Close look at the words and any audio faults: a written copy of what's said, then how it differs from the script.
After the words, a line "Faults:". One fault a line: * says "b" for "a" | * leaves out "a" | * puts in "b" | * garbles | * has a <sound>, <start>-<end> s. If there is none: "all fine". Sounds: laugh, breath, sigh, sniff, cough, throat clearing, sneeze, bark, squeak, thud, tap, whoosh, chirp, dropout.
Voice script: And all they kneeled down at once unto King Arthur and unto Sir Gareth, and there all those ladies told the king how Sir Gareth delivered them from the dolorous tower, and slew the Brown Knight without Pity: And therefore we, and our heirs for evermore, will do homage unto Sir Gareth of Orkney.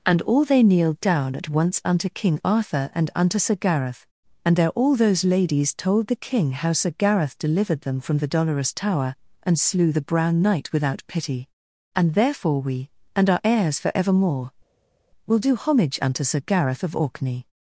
And all they kneeled down at once unto King Arthur and unto Sir Gareth, and there all those ladies told the king how Sir Gareth delivered them from the dolorous tower, and slew the Brown Knight without Pity: And therefore we, and our heirs for evermore, will do homage unto Sir Gareth of Orkney.
Faults:
all fine